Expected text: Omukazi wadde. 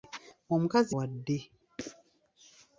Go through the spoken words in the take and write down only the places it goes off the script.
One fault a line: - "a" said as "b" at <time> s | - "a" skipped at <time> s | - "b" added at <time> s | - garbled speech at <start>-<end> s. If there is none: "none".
none